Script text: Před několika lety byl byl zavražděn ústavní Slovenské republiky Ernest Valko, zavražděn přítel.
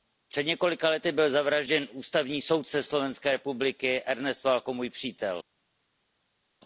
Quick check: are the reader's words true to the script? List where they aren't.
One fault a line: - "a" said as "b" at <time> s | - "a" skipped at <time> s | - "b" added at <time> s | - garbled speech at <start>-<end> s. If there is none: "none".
- "byl" skipped at 1.3 s
- "soudce" added at 2.4 s
- "zavražděn" said as "můj" at 4.7 s